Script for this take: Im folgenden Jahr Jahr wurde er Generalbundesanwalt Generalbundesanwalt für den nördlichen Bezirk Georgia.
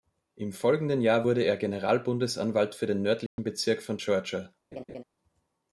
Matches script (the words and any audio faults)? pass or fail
fail